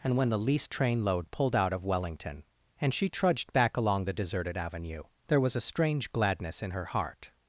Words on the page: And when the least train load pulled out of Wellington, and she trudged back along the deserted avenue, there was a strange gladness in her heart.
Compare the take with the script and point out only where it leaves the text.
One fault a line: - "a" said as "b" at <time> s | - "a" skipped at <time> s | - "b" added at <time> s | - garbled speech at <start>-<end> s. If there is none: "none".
none